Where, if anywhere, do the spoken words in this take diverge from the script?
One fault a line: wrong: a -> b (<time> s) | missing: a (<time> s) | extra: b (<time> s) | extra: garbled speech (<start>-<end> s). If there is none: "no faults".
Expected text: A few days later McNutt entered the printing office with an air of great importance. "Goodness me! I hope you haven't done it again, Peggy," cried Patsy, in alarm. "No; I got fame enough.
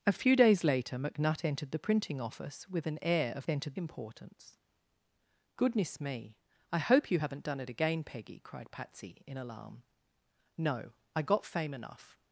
wrong: great -> entered (3.5 s)